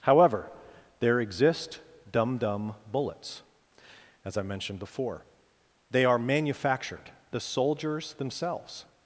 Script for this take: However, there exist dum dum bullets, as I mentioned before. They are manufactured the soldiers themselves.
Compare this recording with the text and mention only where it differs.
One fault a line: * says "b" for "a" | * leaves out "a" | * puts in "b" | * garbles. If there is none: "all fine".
all fine